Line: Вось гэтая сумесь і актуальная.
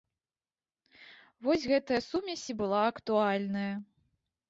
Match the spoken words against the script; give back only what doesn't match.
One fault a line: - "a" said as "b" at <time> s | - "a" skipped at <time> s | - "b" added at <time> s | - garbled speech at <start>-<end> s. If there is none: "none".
- "была" added at 2.6 s